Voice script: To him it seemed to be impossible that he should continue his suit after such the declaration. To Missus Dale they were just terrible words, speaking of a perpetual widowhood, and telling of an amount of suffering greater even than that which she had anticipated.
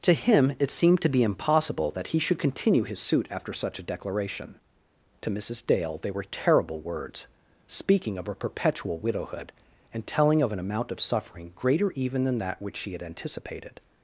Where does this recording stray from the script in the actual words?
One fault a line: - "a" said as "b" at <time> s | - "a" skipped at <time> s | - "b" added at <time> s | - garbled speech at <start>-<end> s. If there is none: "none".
- "the" said as "a" at 3.8 s
- "just" skipped at 6.2 s